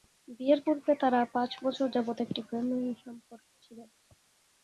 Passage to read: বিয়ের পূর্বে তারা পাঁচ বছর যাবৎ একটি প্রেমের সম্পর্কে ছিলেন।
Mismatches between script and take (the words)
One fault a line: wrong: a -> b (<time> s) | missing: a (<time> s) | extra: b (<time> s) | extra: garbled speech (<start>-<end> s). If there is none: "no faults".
no faults